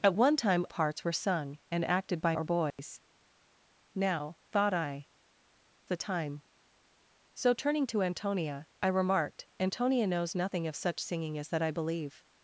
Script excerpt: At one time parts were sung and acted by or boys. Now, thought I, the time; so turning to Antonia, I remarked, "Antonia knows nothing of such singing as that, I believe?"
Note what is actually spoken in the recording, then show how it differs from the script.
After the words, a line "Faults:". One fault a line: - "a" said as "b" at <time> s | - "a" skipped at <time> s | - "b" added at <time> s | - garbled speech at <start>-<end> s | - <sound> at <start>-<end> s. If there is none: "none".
At one time parts were sung and acted by or boys. Now, thought I, the time; so turning to Antonia, I remarked, "Antonia knows nothing of such singing as that, I believe?"
Faults:
- dropout at 2.7-2.8 s